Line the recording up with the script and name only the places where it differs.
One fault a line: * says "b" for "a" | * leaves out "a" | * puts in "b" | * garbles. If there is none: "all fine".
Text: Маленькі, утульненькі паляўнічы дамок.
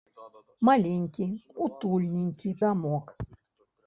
* leaves out "паляўнічы"